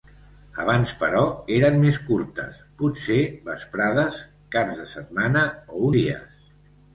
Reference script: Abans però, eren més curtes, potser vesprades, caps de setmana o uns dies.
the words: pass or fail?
fail